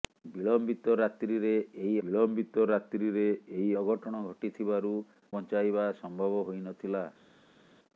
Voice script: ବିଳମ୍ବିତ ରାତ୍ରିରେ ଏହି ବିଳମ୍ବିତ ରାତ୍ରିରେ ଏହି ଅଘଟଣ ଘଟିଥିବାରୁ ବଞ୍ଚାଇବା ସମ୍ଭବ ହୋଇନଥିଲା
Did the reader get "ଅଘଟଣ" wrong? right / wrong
right